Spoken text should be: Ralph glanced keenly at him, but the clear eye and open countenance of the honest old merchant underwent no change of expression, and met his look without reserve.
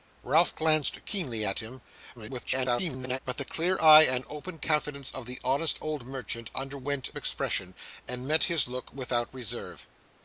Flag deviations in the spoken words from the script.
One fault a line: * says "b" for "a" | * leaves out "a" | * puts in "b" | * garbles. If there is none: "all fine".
* garbles
* leaves out "no change of"